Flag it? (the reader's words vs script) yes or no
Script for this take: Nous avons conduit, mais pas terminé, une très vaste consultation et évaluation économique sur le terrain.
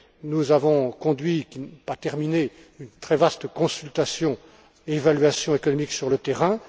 no